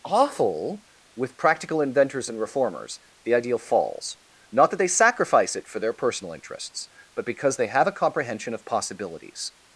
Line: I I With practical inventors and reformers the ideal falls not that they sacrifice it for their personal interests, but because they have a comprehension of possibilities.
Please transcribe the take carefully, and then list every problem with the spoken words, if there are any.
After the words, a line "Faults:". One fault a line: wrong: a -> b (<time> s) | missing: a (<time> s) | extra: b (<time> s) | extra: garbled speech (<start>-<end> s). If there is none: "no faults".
awful With practical inventors and reformers the ideal falls not that they sacrifice it for their personal interests, but because they have a comprehension of possibilities.
Faults:
wrong: I I -> awful (0.0 s)